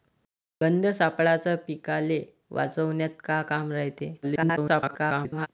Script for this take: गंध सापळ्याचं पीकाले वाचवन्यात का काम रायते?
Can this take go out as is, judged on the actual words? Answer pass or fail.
fail